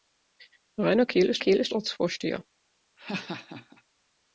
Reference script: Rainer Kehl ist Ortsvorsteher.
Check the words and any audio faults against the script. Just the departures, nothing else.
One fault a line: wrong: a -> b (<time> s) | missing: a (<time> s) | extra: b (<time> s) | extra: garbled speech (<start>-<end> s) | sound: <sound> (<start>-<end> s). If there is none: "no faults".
extra: Kehl ist (1.4 s)
sound: laugh (3.0-3.8 s)